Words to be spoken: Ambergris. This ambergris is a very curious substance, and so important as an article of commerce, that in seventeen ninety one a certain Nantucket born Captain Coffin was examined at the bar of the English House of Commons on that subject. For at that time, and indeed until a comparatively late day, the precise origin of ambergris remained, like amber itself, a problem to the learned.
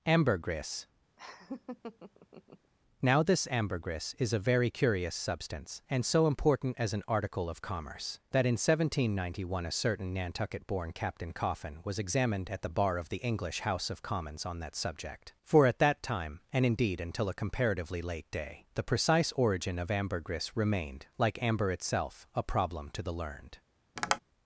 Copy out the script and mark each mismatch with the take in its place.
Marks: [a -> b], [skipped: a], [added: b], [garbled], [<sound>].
Ambergris. [laugh] [added: Now] This ambergris is a very curious substance, and so important as an article of commerce, that in seventeen ninety one a certain Nantucket born Captain Coffin was examined at the bar of the English House of Commons on that subject. For at that time, and indeed until a comparatively late day, the precise origin of ambergris remained, like amber itself, a problem to the learned. [tap]